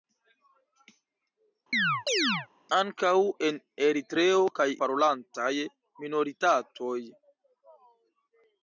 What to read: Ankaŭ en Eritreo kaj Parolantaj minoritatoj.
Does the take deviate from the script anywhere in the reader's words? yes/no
no